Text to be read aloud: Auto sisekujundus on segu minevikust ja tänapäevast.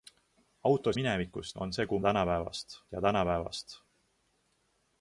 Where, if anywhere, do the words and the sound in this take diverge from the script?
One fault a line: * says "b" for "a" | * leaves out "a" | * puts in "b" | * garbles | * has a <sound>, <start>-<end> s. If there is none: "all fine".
* says "minevikust" for "sisekujundus"
* says "tänapäevast" for "minevikust"